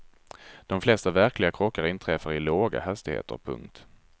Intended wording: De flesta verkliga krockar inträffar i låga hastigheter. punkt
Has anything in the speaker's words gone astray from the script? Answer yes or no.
no